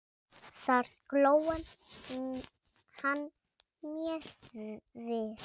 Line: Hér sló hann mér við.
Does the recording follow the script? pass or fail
fail